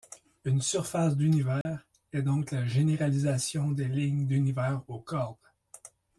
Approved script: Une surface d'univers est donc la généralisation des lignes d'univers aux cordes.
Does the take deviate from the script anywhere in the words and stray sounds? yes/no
yes